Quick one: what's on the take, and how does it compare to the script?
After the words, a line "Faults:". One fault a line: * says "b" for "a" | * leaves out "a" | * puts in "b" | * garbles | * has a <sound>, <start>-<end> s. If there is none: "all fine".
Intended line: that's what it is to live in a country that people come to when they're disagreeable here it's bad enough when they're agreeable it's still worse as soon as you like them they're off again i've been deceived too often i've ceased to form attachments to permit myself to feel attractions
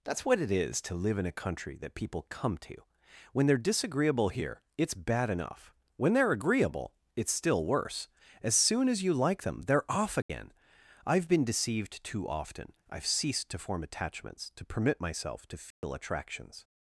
that's what it is to live in a country that people come to when they're disagreeable here it's bad enough when they're agreeable it's still worse as soon as you like them they're off again i've been deceived too often i've ceased to form attachments to permit myself to feel attractions
Faults:
* has a dropout, 10.2-10.3 s
* has a dropout, 15.7-15.8 s